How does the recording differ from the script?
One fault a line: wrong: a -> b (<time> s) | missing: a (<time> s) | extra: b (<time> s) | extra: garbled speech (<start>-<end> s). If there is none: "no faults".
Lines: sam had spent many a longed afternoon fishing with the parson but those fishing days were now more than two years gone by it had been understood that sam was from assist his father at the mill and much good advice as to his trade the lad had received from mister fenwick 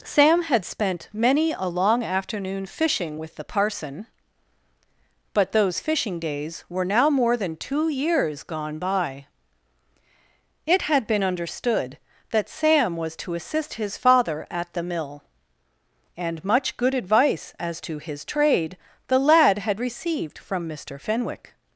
wrong: longed -> long (1.7 s)
wrong: from -> to (13.2 s)